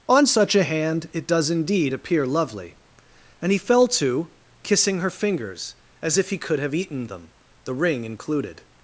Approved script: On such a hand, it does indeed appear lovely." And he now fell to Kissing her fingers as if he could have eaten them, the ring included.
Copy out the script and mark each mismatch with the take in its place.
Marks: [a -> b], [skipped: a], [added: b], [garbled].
On such a hand, it does indeed appear lovely." And he [skipped: now] fell to Kissing her fingers as if he could have eaten them, the ring included.